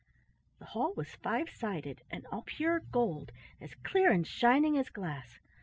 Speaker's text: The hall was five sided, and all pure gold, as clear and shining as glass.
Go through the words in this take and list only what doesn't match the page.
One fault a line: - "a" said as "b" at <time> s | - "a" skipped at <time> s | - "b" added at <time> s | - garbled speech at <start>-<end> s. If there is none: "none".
none